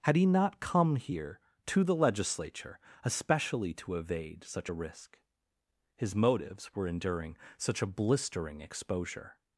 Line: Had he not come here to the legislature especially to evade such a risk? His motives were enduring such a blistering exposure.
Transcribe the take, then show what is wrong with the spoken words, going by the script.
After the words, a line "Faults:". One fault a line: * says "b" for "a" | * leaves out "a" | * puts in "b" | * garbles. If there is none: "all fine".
Had he not come here to the legislature especially to evade such a risk? His motives were enduring such a blistering exposure.
Faults:
all fine